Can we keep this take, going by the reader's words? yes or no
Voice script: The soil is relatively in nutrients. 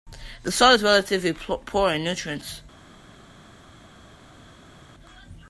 no